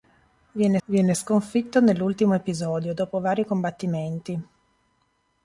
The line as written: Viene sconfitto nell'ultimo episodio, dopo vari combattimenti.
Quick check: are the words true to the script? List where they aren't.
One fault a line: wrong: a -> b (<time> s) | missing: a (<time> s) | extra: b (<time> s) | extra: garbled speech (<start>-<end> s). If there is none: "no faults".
extra: viene (0.9 s)